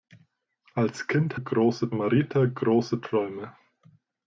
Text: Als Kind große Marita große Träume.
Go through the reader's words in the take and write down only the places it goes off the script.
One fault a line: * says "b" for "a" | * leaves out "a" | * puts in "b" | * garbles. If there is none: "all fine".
all fine